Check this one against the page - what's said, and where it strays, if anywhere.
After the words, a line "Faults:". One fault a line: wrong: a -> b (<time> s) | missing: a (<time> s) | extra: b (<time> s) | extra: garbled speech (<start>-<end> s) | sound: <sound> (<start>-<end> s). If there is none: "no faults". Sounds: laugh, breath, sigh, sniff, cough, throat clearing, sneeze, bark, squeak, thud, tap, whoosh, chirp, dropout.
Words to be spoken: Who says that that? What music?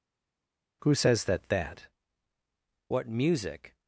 Who says that that? What music?
Faults:
no faults